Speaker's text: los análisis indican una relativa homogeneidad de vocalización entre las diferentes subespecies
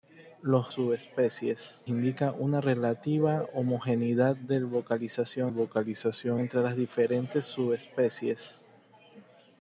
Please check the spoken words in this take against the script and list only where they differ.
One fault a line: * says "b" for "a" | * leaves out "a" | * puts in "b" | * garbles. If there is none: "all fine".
* says "subespecies" for "análisis"
* puts in "vocalización"